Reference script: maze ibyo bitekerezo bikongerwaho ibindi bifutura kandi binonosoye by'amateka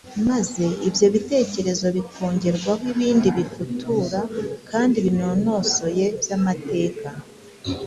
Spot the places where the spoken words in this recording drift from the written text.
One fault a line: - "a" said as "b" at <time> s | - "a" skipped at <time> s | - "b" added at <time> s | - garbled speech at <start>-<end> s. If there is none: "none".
none